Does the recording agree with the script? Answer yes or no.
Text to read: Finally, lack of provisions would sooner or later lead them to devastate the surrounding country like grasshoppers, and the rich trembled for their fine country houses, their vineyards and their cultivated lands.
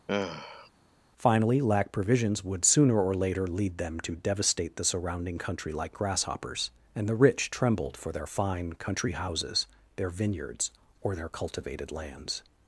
no